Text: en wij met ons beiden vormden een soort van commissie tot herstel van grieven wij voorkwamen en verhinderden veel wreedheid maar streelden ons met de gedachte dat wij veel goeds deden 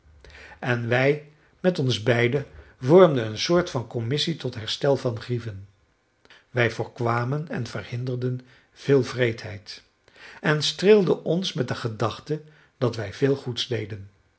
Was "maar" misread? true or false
true